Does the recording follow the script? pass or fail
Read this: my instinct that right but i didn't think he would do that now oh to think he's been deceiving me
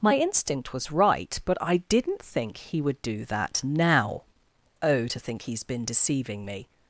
fail